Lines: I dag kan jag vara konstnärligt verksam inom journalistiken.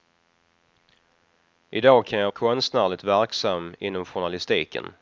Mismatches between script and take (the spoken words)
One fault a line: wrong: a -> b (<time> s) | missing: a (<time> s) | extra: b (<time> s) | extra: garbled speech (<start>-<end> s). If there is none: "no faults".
missing: vara (2.3 s)